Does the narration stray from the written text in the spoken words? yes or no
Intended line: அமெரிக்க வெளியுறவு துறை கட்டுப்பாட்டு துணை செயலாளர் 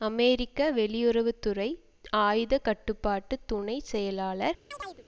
yes